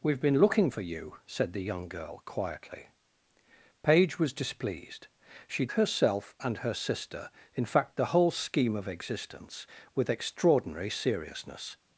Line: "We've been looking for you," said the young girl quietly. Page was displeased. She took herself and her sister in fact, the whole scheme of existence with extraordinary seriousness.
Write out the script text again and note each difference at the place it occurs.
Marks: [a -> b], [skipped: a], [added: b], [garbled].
"We've been looking for you," said the young girl quietly. Page was displeased. She [skipped: took] herself and her sister in fact, the whole scheme of existence with extraordinary seriousness.